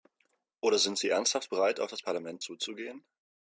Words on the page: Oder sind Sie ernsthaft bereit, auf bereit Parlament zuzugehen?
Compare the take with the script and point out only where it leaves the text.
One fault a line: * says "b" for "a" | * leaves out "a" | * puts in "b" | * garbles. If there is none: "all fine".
* says "das" for "bereit"